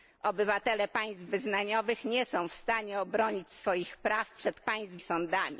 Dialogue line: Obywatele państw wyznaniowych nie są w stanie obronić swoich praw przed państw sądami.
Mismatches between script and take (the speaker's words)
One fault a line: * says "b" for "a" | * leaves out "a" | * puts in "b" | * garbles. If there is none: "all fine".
all fine